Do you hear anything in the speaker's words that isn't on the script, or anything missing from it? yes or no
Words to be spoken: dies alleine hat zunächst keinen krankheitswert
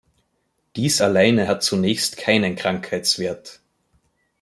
no